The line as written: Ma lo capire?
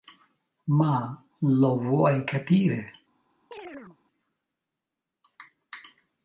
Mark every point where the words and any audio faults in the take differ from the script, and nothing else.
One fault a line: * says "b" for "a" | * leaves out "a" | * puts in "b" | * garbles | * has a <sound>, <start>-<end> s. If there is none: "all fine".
* puts in "vuoi"
* has a chirp, 3.5-4.0 s